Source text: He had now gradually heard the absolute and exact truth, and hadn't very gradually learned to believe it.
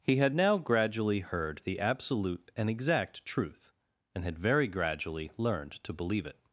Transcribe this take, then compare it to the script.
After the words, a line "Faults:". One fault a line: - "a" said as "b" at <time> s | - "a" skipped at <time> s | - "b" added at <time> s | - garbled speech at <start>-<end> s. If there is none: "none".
He had now gradually heard the absolute and exact truth, and had very gradually learned to believe it.
Faults:
- "hadn't" said as "had" at 4.2 s